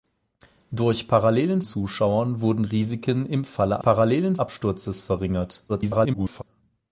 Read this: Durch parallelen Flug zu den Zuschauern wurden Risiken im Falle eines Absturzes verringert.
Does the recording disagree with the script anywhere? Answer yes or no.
yes